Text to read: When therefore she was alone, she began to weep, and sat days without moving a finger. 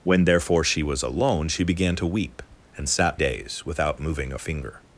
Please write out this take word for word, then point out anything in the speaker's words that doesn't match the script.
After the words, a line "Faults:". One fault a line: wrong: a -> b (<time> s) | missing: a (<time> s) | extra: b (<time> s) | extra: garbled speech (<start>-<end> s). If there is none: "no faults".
When therefore she was alone, she began to weep, and sat days without moving a finger.
Faults:
no faults